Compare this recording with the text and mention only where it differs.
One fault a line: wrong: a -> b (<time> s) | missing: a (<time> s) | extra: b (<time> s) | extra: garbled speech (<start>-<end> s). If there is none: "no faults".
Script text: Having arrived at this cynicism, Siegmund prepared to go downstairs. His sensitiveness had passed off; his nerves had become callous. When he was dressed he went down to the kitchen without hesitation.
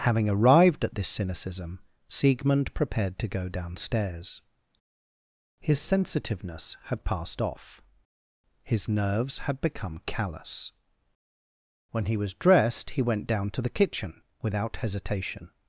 no faults